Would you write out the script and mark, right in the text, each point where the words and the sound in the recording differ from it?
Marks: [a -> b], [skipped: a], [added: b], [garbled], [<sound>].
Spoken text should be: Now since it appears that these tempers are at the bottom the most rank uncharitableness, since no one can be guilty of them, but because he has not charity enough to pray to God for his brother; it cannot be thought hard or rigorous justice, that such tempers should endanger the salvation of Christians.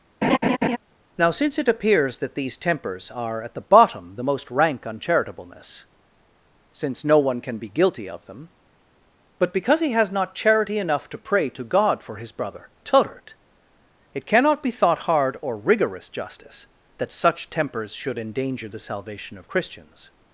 [laugh] Now since it appears that these tempers are at the bottom the most rank uncharitableness, since no one can be guilty of them, but because he has not charity enough to pray to God for his brother; [added: turret] it cannot be thought hard or rigorous justice, that such tempers should endanger the salvation of Christians.